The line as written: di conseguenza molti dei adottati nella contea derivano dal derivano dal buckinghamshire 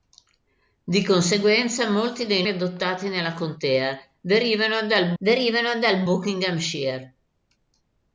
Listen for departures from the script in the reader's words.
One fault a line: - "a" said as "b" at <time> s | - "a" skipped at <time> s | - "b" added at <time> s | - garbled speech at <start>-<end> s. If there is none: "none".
none